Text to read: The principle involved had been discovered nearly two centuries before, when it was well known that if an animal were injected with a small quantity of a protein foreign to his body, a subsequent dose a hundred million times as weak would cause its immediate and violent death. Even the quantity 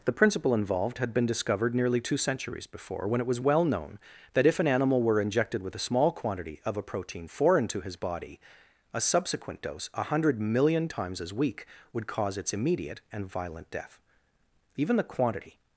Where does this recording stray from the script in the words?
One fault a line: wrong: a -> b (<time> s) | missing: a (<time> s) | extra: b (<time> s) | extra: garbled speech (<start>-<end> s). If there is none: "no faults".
no faults